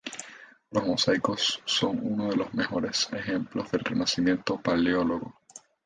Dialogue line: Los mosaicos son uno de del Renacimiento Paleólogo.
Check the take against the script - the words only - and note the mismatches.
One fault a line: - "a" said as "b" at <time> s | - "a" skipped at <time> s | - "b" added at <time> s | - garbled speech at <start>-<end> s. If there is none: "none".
- "los mejores ejemplos" added at 2.4 s